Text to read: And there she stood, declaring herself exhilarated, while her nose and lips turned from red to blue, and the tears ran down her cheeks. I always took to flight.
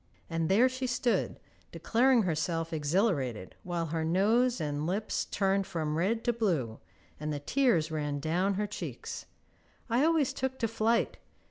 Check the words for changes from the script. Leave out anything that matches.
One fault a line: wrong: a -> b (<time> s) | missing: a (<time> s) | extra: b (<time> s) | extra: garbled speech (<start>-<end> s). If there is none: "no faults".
no faults